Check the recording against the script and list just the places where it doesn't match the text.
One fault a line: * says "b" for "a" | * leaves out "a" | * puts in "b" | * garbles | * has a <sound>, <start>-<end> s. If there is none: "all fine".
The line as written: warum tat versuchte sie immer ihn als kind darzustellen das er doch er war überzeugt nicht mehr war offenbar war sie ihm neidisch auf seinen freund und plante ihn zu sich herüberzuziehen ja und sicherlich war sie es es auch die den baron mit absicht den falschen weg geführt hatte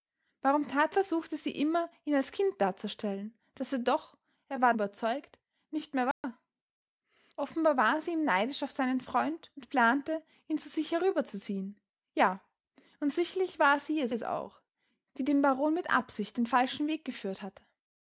* has a dropout, 6.1-6.2 s